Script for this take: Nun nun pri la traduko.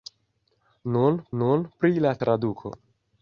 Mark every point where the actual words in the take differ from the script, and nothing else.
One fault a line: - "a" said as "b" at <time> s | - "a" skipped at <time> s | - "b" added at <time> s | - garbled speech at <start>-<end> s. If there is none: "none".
none